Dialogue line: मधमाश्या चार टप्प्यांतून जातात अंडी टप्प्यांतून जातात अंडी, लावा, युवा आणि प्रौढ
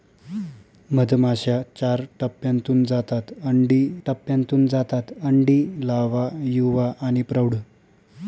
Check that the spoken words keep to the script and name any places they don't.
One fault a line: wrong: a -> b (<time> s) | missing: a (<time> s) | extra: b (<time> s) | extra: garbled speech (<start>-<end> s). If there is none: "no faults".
no faults